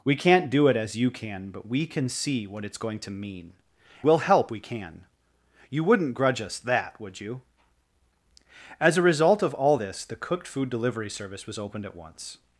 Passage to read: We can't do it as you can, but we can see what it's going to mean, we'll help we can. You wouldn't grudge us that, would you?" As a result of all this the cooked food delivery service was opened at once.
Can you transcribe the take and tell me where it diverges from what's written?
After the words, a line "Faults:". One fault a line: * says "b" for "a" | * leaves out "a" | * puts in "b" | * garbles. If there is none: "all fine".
We can't do it as you can, but we can see what it's going to mean, we'll help we can. You wouldn't grudge us that, would you?" As a result of all this the cooked food delivery service was opened at once.
Faults:
all fine